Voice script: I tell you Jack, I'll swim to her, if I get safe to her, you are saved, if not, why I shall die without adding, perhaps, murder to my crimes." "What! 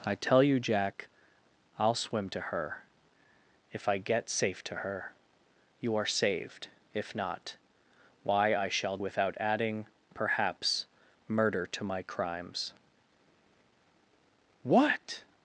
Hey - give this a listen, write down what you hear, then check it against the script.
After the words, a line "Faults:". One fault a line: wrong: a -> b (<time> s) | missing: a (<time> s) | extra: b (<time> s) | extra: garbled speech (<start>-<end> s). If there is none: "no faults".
I tell you Jack, I'll swim to her, if I get safe to her, you are saved, if not, why I shall without adding, perhaps, murder to my crimes." "What!
Faults:
missing: die (9.0 s)